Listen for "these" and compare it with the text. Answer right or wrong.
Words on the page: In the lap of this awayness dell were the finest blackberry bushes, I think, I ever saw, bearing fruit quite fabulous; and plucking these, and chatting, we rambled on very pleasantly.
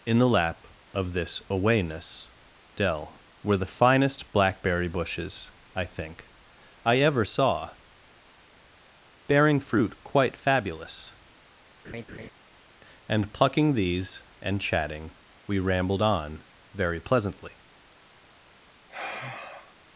right